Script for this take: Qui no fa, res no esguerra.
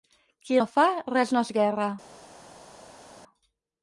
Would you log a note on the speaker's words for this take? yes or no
no